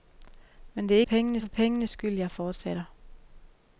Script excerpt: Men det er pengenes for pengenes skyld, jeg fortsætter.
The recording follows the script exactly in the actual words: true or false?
true